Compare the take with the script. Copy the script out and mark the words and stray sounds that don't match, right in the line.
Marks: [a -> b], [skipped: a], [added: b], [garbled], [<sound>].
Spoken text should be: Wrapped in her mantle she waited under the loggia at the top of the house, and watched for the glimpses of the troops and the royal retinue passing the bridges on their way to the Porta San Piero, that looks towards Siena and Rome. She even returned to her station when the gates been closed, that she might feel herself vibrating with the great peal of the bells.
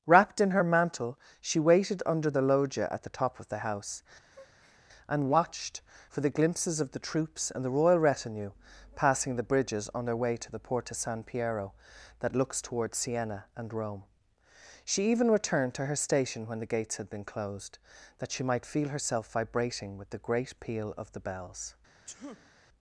Wrapped in her mantle she waited under the loggia at the top of the house, [breath] and watched for the glimpses of the troops and the royal retinue passing the bridges on their way to the Porta San Piero, that looks towards Siena and Rome. She even returned to her station when the gates [added: had] been closed, that she might feel herself vibrating with the great peal of the bells. [sneeze]